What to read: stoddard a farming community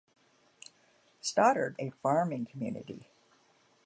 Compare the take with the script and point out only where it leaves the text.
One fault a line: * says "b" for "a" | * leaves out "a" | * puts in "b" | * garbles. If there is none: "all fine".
all fine